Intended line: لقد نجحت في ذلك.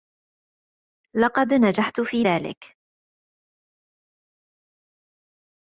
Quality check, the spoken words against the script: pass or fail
pass